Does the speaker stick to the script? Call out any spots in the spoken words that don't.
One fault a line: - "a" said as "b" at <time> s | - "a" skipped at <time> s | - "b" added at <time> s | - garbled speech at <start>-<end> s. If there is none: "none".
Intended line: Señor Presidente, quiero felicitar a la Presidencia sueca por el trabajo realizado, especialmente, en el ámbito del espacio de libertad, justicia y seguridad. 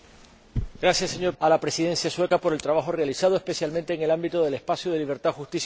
- "Presidente quiero felicitar" skipped at 1.3 s